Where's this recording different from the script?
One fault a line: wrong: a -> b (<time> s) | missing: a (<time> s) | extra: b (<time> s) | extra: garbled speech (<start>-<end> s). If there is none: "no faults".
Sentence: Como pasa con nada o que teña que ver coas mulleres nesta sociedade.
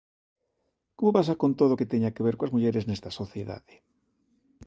wrong: nada -> todo (1.6 s)